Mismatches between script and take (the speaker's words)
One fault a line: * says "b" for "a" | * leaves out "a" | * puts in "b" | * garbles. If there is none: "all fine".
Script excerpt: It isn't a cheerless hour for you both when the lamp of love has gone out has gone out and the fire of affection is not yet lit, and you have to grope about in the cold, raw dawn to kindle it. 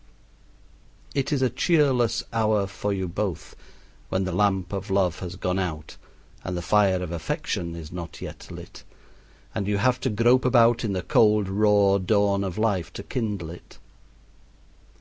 * says "is" for "isn't"
* leaves out "has gone out"
* puts in "of life"